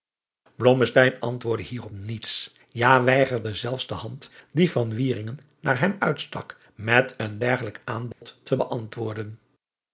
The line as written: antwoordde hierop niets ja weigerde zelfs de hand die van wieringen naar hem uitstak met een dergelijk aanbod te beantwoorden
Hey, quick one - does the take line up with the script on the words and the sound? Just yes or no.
no